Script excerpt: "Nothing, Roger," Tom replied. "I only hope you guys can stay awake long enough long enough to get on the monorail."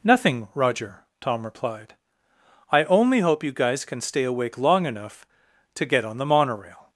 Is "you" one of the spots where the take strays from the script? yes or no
no